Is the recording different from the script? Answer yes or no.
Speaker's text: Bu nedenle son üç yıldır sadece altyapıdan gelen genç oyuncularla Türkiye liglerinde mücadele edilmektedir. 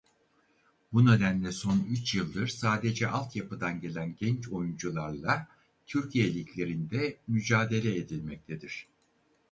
no